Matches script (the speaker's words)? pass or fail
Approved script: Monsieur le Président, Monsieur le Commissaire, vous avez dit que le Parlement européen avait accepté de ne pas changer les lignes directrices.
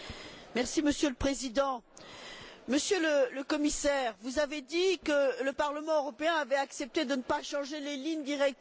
pass